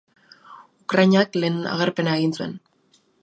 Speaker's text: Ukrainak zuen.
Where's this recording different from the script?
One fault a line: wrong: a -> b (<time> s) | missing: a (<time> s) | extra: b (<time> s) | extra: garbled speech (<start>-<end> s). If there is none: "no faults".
extra: lehen agerpena egin (1.4 s)